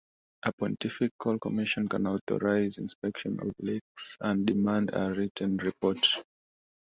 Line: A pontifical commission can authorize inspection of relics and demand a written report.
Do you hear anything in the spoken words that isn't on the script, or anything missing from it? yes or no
no